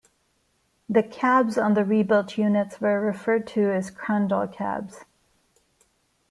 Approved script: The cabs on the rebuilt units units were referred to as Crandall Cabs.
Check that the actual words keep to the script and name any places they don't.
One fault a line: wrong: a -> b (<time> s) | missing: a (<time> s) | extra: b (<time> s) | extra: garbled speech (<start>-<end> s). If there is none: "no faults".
missing: units (2.8 s)